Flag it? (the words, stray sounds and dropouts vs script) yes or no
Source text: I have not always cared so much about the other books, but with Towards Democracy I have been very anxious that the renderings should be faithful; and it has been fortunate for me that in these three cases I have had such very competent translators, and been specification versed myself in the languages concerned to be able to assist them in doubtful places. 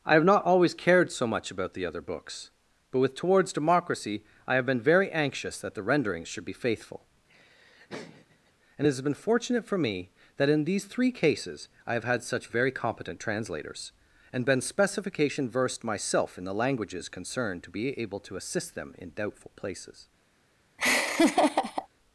yes